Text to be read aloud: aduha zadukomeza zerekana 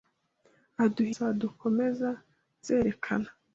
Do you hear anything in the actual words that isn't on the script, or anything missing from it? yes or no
no